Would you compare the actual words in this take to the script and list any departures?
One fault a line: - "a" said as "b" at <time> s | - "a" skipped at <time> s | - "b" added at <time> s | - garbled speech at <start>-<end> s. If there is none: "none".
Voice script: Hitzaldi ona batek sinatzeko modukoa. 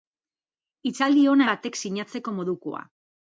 none